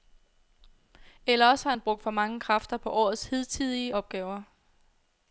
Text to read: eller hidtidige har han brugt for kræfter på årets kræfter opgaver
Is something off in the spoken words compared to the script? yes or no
yes